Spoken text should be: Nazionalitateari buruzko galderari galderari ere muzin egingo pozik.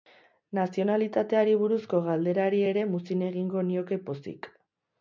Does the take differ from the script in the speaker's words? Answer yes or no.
yes